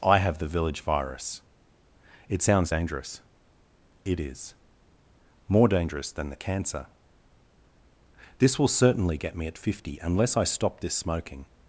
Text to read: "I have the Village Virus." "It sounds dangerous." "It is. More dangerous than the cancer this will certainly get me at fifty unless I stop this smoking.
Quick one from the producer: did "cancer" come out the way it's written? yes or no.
yes